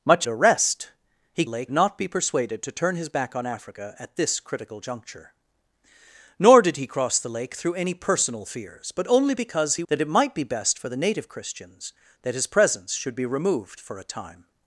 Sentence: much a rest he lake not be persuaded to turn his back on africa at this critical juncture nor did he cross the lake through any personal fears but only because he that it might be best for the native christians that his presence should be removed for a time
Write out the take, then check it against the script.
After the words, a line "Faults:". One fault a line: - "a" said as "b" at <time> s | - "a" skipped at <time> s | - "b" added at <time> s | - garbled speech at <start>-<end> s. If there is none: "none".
much a rest he lake not be persuaded to turn his back on africa at this critical juncture nor did he cross the lake through any personal fears but only because he that it might be best for the native christians that his presence should be removed for a time
Faults:
none